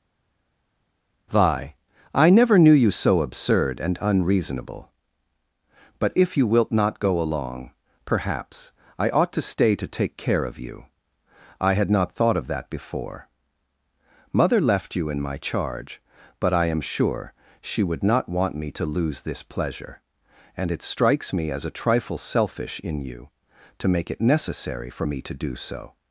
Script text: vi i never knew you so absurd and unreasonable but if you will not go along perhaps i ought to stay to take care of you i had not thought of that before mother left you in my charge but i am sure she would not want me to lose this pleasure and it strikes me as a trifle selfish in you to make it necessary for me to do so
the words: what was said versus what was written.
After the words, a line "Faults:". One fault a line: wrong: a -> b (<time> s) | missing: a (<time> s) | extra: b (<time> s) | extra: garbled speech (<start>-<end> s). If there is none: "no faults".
vi i never knew you so absurd and unreasonable but if you wilt not go along perhaps i ought to stay to take care of you i had not thought of that before mother left you in my charge but i am sure she would not want me to lose this pleasure and it strikes me as a trifle selfish in you to make it necessary for me to do so
Faults:
wrong: will -> wilt (6.5 s)